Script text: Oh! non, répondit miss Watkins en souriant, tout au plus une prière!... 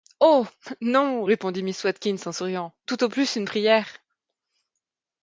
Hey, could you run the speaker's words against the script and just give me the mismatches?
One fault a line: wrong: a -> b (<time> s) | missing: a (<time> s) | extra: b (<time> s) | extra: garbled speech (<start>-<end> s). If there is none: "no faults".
no faults